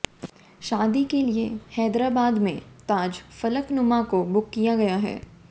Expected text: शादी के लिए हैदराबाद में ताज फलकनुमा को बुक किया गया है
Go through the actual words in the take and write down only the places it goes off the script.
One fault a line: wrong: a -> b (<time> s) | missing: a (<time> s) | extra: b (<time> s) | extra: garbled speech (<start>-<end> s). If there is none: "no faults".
no faults